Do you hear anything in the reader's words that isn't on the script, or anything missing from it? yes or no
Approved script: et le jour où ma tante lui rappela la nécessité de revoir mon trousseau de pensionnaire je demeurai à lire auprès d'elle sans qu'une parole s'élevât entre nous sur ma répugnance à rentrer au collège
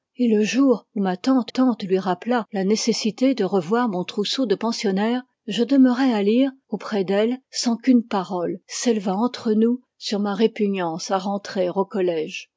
yes